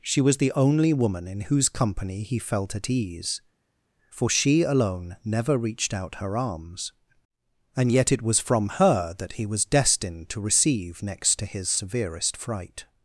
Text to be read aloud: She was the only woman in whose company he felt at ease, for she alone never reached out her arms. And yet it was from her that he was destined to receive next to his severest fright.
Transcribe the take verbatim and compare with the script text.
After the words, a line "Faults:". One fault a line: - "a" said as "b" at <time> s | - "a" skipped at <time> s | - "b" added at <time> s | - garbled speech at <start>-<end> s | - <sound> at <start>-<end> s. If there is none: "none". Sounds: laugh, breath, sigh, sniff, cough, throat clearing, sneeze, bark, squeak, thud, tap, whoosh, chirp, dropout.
She was the only woman in whose company he felt at ease, for she alone never reached out her arms. And yet it was from her that he was destined to receive next to his severest fright.
Faults:
none